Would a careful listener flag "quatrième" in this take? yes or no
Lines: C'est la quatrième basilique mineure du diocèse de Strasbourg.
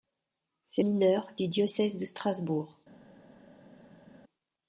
yes